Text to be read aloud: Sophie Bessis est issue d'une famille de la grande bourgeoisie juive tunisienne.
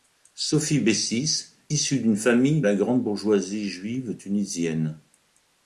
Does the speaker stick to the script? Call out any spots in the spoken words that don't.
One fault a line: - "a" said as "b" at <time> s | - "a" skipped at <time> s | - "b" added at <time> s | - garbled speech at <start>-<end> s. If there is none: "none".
- "est" skipped at 1.6 s
- "de" skipped at 2.6 s